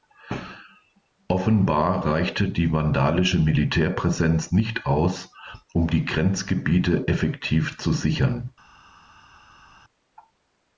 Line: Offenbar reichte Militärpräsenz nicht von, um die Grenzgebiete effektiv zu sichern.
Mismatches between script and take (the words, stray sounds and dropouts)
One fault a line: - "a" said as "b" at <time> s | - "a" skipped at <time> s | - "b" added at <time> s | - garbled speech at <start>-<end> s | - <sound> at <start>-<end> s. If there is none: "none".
- "die vandalische" added at 2.5 s
- "von" said as "aus" at 4.9 s